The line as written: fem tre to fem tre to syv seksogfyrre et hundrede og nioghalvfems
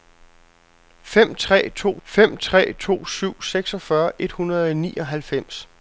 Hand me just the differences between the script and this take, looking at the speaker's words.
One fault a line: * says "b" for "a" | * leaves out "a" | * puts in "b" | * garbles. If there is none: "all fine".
all fine